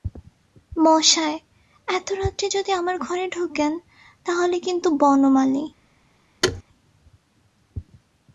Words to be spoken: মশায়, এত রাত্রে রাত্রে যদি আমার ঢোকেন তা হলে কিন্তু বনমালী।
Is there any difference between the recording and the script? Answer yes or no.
yes